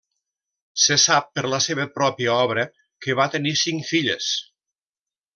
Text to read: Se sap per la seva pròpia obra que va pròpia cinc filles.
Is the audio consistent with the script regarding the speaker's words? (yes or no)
no